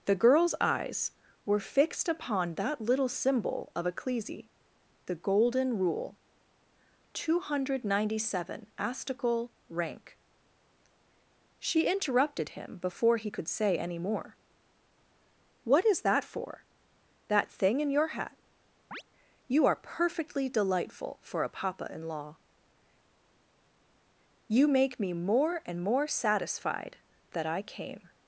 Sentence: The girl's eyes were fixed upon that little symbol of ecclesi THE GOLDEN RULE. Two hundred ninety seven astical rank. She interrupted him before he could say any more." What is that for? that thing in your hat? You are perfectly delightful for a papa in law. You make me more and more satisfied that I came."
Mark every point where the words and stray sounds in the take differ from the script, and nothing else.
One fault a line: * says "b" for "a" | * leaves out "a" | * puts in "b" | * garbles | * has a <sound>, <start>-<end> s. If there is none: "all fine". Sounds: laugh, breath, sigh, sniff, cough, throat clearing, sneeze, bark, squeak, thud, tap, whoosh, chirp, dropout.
* has a chirp, 18.9-19.0 s